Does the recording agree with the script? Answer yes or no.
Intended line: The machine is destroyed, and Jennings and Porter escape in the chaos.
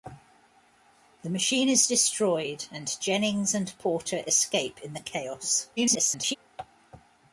no